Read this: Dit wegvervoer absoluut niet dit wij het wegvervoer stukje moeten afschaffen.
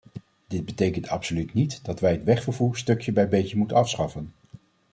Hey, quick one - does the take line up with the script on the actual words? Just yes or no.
no